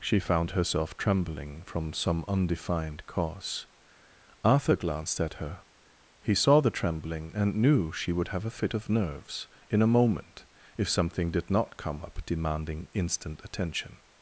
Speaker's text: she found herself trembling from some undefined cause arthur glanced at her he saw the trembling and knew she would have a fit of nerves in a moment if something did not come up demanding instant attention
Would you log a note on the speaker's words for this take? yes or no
no